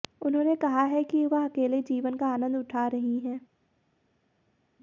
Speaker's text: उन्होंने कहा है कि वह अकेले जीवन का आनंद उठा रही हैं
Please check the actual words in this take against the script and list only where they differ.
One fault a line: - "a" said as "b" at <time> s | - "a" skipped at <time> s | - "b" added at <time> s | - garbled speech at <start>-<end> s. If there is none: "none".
none